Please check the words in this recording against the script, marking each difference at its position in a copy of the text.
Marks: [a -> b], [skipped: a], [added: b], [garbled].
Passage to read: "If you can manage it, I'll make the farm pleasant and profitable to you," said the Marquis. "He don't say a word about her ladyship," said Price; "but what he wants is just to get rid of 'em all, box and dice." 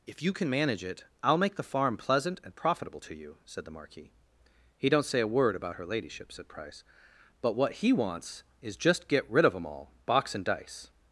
"If you can manage it, I'll make the farm pleasant and profitable to you," said the Marquis. "He don't say a word about her ladyship," said Price; "but what he wants is just [skipped: to] get rid of 'em all, box and dice."